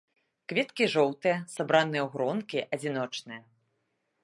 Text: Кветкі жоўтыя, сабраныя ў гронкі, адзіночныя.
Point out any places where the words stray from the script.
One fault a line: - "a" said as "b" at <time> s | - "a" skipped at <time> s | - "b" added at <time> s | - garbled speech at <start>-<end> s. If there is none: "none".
none